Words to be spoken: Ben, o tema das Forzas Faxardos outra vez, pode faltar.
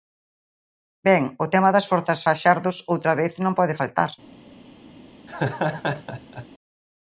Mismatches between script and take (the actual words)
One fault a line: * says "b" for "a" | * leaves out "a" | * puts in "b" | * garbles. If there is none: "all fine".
* puts in "non"